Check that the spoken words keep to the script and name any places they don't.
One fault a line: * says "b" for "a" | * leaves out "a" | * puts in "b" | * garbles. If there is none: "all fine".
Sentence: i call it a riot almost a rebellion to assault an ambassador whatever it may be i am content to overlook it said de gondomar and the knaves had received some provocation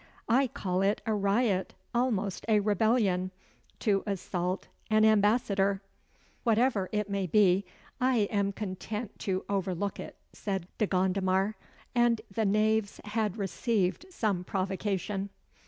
all fine